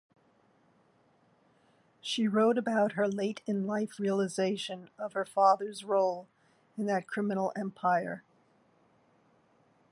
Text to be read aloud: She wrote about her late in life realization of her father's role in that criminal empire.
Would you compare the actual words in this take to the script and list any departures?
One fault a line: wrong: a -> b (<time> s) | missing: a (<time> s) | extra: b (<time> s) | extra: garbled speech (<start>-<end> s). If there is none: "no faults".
no faults